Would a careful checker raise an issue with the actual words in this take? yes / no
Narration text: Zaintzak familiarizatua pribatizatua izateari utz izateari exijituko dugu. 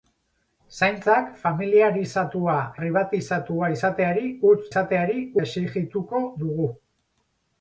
no